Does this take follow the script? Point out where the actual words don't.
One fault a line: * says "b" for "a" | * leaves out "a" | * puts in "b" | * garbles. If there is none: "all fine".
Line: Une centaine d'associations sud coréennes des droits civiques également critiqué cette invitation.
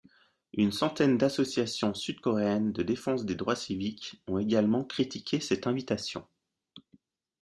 * puts in "de défense"
* puts in "ont"